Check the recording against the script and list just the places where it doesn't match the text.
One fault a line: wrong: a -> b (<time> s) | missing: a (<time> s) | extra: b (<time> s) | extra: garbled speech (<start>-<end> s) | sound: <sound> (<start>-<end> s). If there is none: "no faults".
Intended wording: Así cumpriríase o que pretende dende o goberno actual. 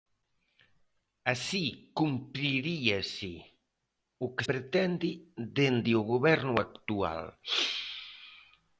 no faults